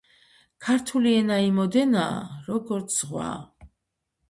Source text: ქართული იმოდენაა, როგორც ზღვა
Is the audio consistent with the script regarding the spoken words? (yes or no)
no